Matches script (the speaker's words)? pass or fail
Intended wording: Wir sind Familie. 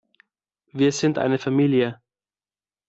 fail